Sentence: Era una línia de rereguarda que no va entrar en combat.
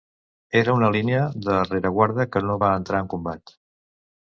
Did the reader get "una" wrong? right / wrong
right